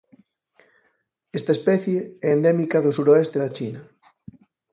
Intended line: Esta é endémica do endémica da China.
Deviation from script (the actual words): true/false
true